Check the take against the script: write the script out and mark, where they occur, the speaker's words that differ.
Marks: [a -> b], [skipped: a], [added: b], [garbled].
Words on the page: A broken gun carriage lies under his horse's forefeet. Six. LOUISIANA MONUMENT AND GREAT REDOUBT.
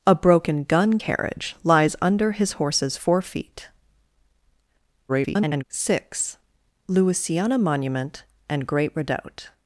A broken gun carriage lies under his horse's forefeet. [garbled] Six. LOUISIANA MONUMENT AND GREAT REDOUBT.